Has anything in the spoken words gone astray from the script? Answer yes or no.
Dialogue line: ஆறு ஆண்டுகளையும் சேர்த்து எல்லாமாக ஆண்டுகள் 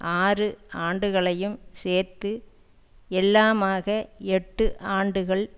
yes